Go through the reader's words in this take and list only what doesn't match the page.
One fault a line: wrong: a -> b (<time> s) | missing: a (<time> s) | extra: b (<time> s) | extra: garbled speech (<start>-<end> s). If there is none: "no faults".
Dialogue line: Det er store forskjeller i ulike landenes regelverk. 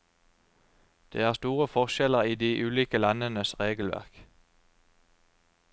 extra: de (2.3 s)